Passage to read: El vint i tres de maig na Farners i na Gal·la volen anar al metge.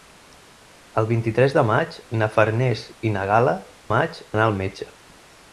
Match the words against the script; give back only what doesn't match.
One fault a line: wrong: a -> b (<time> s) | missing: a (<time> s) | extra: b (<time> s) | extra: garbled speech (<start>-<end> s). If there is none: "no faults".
wrong: volen -> maig (3.9 s)